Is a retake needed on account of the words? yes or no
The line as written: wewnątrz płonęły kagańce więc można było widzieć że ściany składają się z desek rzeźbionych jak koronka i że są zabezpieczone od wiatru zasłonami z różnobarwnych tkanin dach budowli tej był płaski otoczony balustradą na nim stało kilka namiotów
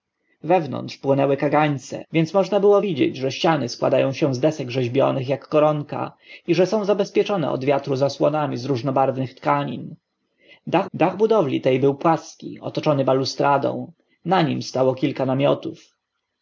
yes